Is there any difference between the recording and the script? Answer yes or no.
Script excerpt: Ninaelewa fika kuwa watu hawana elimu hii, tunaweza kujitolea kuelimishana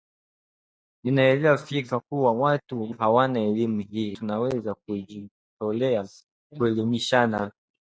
no